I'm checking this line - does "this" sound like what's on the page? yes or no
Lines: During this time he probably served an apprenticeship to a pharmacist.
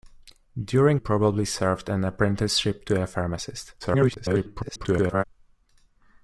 no